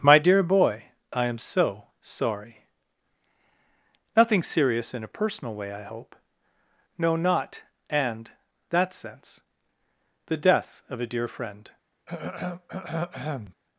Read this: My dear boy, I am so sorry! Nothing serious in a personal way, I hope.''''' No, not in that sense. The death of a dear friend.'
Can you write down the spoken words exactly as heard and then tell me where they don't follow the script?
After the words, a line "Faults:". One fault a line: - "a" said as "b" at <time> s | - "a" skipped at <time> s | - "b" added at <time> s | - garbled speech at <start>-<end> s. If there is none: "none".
My dear boy, I am so sorry! Nothing serious in a personal way, I hope.''''' No, not and that sense. The death of a dear friend.'
Faults:
- "in" said as "and" at 7.9 s